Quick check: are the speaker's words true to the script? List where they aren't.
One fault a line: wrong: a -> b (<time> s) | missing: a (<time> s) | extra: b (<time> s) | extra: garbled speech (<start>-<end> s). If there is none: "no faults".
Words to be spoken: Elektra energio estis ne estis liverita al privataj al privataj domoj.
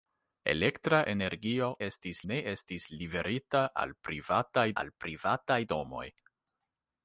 no faults